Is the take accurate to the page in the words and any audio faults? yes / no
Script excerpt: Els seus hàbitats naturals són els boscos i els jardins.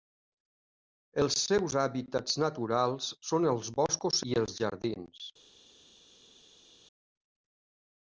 yes